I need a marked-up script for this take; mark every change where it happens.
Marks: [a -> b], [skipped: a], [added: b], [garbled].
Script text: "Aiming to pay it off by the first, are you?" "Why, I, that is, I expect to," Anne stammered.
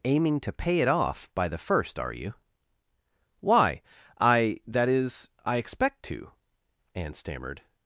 "Aiming to pay it off by the first, are you?" "Why, I, that is, I expect to," Anne stammered.